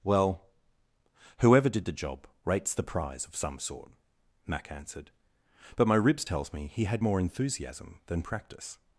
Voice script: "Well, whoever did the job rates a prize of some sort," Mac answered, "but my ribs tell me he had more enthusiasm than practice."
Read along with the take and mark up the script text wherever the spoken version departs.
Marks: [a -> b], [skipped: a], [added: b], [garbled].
"Well, whoever did the job rates [a -> the] prize of some sort," Mac answered, "but my ribs [tell -> tells] me he had more enthusiasm than practice."